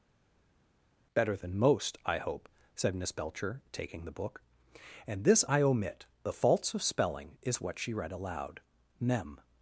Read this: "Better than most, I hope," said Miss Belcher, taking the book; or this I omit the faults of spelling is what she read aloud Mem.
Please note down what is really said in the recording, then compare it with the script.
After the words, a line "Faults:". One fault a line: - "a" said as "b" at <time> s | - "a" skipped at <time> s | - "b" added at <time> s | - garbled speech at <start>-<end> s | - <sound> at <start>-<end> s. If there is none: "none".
"Better than most, I hope," said Miss Belcher, taking the book; and this I omit the faults of spelling is what she read aloud Mem.
Faults:
- "or" said as "and" at 5.1 s